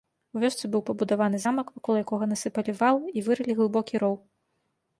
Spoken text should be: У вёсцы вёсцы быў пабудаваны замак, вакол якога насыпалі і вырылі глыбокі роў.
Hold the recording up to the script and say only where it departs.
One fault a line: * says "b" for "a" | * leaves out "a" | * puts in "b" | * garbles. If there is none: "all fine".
* leaves out "вёсцы"
* puts in "вал"